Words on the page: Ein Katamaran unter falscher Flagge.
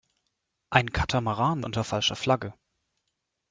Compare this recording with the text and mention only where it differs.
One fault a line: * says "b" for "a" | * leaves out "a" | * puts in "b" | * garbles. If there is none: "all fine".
all fine